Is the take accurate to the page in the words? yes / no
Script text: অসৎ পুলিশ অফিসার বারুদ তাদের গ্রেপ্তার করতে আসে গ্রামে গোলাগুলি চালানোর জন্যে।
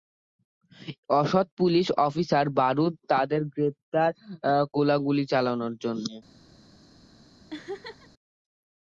no